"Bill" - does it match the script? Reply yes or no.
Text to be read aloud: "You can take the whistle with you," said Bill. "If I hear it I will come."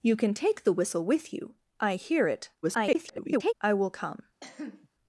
no